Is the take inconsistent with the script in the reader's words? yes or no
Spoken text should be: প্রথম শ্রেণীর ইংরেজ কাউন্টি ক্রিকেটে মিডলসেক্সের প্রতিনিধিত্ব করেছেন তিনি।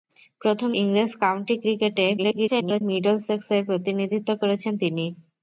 yes